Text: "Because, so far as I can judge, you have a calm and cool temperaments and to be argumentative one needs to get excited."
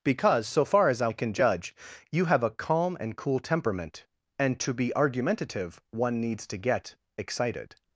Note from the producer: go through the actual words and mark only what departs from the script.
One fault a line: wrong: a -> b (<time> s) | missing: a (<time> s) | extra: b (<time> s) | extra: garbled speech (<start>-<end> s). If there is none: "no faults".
wrong: temperaments -> temperament (3.4 s)